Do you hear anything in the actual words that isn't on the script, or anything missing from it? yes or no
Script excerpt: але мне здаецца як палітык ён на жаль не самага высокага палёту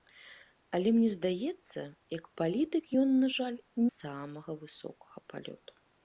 yes